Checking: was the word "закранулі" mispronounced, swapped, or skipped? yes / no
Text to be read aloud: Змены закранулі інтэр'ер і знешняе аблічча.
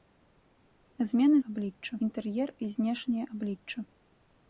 yes